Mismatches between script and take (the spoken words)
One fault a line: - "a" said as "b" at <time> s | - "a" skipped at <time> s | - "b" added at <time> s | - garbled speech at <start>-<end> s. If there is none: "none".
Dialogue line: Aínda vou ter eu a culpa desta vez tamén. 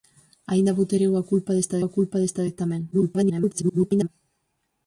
- "a culpa desta" added at 1.8 s
- garbled speech at 2.9-4.1 s